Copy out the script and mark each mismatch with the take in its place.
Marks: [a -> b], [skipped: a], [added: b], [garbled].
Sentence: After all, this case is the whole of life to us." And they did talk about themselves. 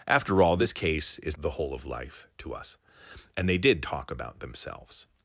After all, this case is the whole of life to us." And they did talk about themselves.